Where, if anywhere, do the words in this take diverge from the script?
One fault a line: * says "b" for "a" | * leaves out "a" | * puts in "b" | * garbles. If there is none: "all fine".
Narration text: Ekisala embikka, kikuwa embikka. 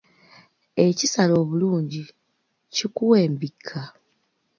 * says "obulungi" for "embikka"